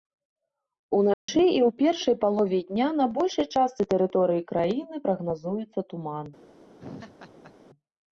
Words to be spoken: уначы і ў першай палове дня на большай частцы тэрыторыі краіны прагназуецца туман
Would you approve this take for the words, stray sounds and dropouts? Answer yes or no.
no